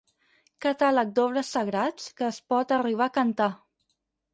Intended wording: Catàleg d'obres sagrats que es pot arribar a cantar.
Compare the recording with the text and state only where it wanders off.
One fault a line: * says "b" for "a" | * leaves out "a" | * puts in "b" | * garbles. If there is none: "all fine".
all fine